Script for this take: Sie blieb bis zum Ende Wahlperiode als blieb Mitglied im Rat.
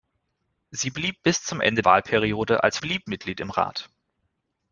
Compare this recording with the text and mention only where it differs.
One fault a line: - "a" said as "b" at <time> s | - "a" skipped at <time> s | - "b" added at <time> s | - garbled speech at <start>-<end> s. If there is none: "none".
none